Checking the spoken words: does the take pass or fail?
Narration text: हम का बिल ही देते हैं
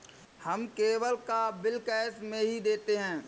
fail